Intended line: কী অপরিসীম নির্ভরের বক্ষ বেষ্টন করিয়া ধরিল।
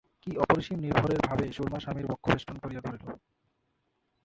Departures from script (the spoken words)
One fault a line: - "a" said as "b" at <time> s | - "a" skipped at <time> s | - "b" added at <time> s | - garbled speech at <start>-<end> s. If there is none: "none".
- "ভাবে সুরমা স্বামীর" added at 1.3 s